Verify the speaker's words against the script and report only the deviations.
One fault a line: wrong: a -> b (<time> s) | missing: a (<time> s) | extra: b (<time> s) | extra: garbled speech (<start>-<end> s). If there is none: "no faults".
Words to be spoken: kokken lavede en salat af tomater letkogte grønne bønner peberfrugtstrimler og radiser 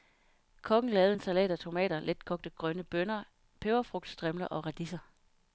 no faults